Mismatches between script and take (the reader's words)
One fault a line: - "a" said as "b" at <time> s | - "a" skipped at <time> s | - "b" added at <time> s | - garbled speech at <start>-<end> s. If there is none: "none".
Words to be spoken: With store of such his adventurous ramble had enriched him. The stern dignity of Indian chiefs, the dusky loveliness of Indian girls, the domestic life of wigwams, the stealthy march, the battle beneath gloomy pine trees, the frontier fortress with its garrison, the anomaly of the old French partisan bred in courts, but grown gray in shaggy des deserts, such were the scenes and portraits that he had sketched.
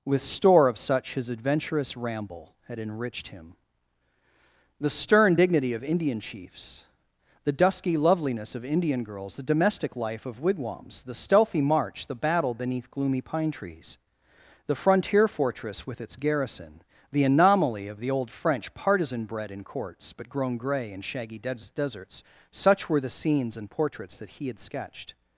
none